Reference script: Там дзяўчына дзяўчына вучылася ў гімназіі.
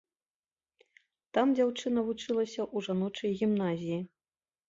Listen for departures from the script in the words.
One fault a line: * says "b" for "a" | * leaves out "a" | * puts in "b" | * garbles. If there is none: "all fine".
* leaves out "дзяўчына"
* puts in "жаночай"